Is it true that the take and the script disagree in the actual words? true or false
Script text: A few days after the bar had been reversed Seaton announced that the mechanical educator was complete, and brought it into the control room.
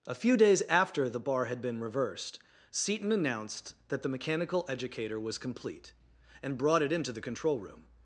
false